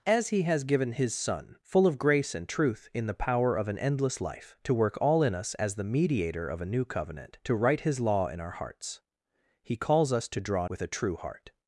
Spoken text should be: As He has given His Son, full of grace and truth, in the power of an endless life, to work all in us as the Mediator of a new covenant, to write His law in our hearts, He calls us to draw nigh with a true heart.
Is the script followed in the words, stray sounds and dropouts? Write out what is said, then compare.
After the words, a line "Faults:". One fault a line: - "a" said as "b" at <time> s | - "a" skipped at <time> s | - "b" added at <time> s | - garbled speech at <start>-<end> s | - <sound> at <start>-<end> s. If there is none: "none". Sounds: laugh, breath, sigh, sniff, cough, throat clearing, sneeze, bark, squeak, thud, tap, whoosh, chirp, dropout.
As He has given His Son, full of grace and truth, in the power of an endless life, to work all in us as the Mediator of a new covenant, to write His law in our hearts, He calls us to draw with a true heart.
Faults:
- "nigh" skipped at 10.7 s